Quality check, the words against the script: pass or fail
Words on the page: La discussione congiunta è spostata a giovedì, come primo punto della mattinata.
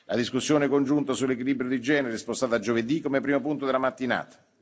fail